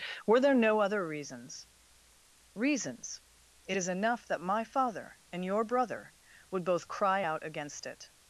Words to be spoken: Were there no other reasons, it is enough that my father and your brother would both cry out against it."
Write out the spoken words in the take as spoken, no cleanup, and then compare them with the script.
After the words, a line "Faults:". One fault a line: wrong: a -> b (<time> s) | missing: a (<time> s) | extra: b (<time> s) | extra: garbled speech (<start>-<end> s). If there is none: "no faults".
Were there no other reasons reasons, it is enough that my father and your brother would both cry out against it."
Faults:
extra: reasons (2.5 s)